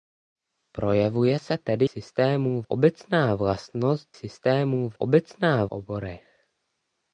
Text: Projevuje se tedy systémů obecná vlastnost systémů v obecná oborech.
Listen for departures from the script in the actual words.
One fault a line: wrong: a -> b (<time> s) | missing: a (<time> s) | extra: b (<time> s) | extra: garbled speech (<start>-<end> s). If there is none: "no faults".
no faults